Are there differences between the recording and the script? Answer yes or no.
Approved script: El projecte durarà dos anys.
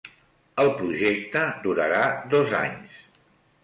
no